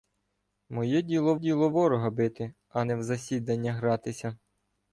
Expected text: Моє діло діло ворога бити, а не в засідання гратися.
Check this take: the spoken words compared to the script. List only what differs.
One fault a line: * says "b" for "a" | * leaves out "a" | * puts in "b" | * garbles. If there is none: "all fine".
all fine